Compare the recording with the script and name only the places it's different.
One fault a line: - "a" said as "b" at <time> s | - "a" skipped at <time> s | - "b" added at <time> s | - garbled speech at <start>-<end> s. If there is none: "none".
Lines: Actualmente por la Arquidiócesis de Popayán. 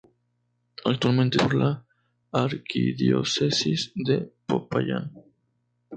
none